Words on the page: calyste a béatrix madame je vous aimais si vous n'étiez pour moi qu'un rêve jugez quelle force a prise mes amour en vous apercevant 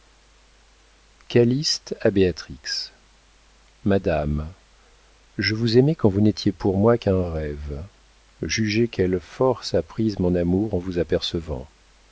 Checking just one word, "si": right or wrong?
wrong